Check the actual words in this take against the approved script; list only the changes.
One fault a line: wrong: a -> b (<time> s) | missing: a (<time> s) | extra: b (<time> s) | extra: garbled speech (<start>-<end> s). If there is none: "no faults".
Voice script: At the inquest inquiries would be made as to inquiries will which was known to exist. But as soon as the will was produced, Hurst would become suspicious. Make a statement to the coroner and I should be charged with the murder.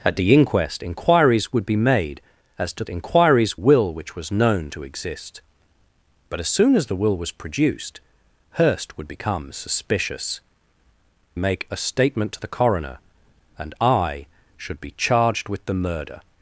no faults